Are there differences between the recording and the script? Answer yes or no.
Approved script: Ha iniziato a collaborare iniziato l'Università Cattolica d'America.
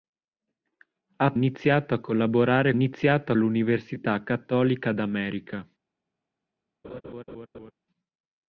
no